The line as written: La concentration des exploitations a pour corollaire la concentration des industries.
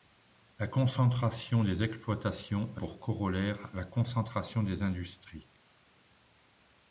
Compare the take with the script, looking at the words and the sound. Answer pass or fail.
pass